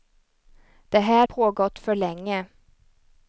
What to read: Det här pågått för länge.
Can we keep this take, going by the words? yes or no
yes